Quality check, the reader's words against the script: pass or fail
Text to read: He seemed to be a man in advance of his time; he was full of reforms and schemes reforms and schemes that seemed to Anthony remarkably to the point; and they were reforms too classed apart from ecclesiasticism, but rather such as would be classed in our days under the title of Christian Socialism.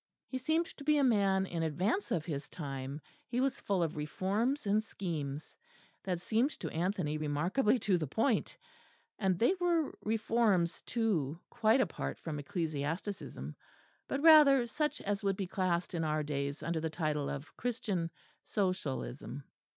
fail